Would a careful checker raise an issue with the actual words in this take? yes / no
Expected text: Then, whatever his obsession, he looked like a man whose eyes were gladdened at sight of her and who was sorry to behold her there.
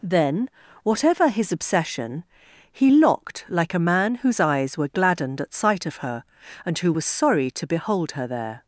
yes